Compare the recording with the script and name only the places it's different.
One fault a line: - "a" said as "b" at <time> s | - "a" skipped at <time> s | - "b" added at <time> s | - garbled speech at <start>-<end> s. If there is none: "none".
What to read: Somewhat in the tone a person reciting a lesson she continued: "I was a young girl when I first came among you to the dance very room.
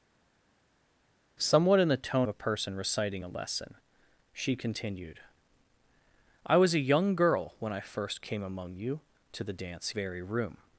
none